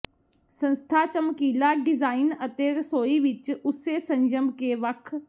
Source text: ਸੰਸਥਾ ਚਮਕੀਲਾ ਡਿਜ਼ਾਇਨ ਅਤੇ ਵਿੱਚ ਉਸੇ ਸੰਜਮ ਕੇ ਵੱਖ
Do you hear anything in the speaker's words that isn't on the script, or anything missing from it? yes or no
yes